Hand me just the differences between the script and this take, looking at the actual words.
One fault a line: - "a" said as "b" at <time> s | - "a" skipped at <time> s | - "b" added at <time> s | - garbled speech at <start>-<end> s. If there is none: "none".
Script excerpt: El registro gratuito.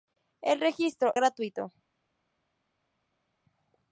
none